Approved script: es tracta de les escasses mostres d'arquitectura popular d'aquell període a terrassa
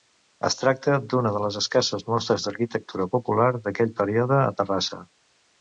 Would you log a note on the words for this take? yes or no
yes